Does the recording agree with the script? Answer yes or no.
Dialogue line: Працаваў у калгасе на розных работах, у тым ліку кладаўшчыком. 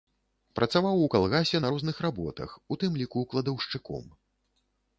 yes